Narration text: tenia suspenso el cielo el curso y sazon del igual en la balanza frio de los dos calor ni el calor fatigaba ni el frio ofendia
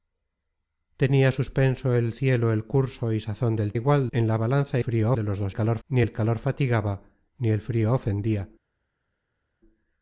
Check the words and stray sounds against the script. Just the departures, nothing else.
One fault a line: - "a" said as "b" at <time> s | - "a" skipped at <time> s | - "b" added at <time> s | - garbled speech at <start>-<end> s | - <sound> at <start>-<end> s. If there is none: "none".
none